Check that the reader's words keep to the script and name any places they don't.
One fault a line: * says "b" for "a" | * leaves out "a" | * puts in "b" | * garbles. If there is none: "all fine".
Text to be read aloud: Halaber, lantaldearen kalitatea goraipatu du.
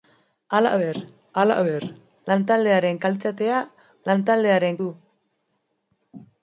* puts in "halaber"
* says "lantaldearen" for "goraipatu"